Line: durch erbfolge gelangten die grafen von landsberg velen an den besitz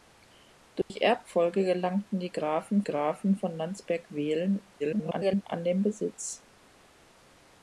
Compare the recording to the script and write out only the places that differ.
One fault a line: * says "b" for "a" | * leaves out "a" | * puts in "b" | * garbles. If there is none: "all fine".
* puts in "grafen"
* garbles